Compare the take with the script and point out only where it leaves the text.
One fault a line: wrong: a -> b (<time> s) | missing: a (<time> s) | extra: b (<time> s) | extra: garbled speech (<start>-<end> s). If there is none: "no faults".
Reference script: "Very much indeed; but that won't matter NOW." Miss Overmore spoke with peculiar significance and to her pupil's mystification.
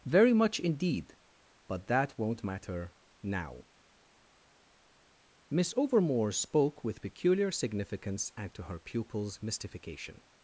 no faults